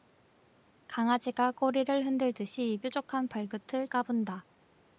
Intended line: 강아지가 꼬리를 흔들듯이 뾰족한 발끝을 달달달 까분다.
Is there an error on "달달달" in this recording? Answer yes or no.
yes